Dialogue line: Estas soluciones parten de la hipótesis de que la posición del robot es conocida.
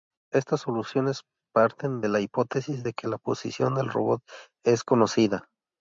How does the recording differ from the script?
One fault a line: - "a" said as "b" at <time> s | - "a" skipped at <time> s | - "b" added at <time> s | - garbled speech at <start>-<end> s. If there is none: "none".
none